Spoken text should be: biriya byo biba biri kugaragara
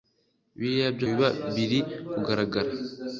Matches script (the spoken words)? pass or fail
pass